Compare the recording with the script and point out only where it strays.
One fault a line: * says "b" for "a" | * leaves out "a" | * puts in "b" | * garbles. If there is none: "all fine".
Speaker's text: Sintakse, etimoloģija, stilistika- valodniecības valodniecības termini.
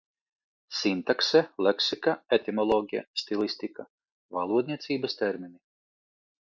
* puts in "leksika"
* leaves out "valodniecības"